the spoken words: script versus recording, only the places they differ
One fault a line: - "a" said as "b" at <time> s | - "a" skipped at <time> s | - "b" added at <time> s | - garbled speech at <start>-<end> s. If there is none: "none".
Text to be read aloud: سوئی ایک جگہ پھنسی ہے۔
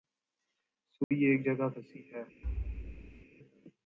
none